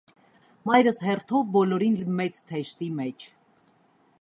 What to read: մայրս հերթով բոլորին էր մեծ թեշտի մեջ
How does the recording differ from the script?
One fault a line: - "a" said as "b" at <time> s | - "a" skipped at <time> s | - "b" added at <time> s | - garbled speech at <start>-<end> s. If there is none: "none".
none